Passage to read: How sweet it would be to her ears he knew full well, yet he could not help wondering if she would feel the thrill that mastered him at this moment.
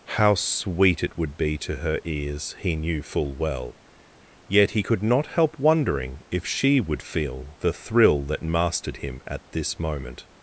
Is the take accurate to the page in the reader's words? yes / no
yes